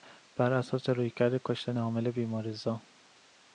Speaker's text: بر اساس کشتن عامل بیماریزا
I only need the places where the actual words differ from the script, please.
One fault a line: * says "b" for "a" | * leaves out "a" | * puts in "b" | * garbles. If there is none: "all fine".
* puts in "رویکرد"